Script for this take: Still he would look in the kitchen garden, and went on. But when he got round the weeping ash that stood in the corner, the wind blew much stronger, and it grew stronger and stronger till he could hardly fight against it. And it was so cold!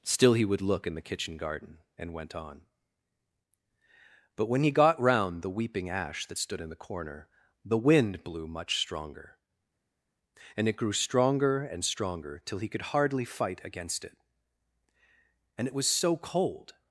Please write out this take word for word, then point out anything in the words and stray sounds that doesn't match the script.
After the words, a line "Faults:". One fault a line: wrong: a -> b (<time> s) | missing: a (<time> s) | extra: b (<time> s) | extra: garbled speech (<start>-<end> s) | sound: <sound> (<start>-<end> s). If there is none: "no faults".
Still he would look in the kitchen garden, and went on. But when he got round the weeping ash that stood in the corner, the wind blew much stronger, and it grew stronger and stronger till he could hardly fight against it. And it was so cold!
Faults:
no faults